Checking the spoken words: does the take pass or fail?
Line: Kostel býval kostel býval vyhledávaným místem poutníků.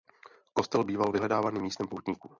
fail